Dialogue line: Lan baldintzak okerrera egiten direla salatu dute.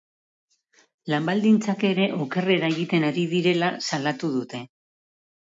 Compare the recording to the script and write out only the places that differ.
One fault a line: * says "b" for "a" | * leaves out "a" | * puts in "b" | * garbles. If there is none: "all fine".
* puts in "ere"
* puts in "ari"